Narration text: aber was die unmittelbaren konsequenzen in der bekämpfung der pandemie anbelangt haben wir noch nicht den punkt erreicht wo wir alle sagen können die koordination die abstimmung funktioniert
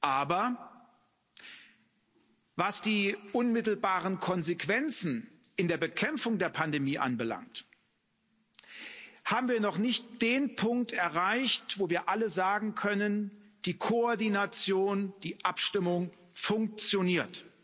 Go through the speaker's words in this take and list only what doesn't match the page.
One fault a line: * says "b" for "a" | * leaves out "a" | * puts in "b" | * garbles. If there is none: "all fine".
all fine